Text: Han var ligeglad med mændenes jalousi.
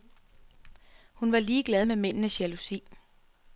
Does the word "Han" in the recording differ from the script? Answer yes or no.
yes